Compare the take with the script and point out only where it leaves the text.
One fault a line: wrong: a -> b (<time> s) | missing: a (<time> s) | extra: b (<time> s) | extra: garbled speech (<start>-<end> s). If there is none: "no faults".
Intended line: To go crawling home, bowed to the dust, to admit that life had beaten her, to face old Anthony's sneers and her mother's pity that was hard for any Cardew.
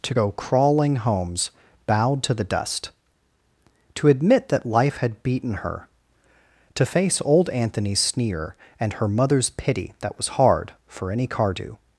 wrong: home -> homes (1.0 s)
wrong: sneers -> sneer (8.0 s)